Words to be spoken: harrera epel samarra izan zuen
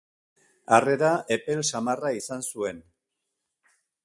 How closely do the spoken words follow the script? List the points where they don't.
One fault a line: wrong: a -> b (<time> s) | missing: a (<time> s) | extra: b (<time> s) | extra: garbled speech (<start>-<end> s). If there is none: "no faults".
no faults